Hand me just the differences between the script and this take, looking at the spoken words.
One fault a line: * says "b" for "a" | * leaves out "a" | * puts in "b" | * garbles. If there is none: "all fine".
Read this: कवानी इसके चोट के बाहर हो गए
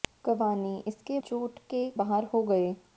all fine